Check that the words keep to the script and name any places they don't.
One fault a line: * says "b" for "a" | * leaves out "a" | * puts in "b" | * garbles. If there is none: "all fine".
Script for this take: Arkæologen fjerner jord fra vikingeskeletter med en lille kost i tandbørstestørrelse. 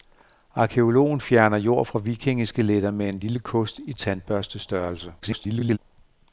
* garbles